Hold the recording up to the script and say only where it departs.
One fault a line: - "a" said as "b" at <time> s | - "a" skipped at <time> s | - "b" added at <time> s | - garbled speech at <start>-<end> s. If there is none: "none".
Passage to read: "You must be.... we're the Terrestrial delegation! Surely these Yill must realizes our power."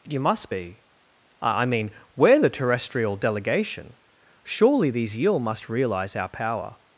- "I mean" added at 1.4 s
- "realizes" said as "realize" at 5.7 s